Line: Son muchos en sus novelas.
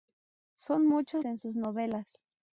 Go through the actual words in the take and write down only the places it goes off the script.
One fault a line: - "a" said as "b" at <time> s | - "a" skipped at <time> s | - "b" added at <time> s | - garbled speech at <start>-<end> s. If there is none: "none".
none